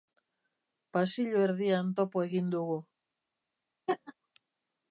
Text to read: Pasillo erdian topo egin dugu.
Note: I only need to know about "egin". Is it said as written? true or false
true